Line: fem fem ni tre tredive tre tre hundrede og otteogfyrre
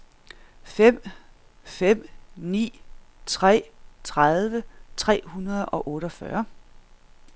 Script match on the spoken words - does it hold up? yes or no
no